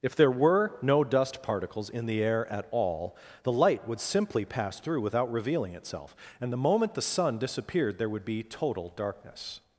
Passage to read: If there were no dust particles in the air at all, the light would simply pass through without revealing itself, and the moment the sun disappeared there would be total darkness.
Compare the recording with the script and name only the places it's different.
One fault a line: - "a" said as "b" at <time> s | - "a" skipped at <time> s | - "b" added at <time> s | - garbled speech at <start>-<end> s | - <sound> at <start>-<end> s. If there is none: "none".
none